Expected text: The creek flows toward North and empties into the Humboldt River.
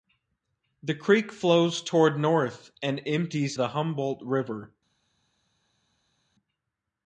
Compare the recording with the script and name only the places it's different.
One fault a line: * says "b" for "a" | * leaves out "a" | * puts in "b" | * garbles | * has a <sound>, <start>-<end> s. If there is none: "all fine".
* leaves out "into"